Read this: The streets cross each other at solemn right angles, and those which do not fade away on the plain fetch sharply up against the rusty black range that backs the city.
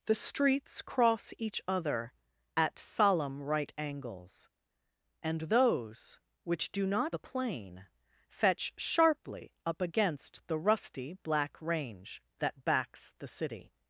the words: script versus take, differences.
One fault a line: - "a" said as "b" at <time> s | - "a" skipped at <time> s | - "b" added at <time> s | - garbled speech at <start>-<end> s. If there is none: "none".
- "fade away on" skipped at 7.2 s